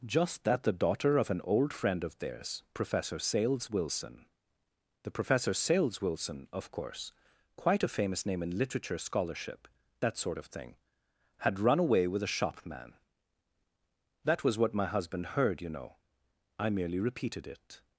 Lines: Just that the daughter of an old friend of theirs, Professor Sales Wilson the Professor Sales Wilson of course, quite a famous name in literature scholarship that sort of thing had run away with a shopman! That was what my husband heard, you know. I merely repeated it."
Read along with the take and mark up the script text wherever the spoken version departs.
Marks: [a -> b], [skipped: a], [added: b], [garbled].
Just that the daughter of an old friend of theirs, Professor Sales Wilson the Professor Sales Wilson of course, quite a famous name in literature scholarship that sort of thing had run away with a shopman! That was what my husband heard, you know. I merely repeated it."